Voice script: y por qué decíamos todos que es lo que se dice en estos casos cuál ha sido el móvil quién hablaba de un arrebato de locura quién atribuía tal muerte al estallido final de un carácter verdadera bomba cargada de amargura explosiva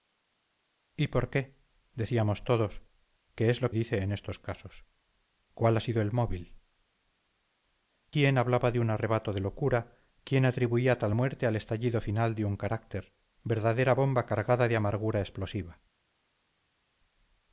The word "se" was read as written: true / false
false